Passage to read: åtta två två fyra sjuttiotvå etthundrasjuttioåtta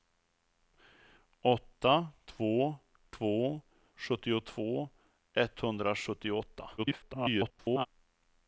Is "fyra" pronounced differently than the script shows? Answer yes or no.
yes